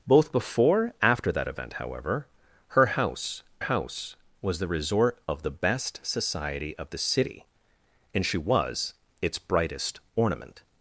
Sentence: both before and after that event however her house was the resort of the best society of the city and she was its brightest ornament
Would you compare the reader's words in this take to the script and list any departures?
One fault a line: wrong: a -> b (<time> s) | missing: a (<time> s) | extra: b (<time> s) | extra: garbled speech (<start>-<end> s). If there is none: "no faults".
missing: and (0.9 s)
extra: house (3.6 s)